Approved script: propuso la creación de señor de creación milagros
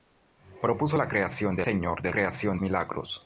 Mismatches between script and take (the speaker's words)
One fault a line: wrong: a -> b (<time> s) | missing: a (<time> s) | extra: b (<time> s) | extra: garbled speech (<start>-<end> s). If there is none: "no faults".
no faults